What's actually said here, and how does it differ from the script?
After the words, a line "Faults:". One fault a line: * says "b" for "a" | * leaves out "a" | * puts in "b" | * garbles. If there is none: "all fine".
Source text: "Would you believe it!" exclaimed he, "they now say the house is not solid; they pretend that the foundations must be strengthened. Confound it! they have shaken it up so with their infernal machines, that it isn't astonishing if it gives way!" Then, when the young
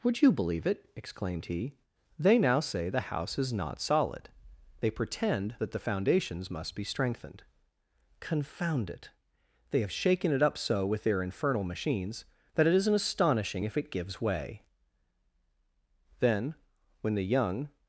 "Would you believe it!" exclaimed he, "they now say the house is not solid; they pretend that the foundations must be strengthened. Confound it! they have shaken it up so with their infernal machines, that it isn't astonishing if it gives way!" Then, when the young
Faults:
all fine